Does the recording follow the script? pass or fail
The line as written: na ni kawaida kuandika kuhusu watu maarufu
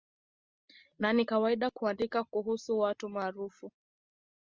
pass